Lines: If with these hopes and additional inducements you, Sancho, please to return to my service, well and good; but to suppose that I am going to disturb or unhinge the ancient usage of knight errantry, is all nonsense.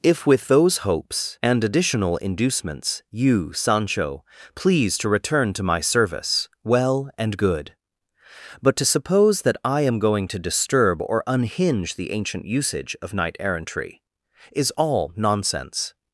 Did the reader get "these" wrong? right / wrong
wrong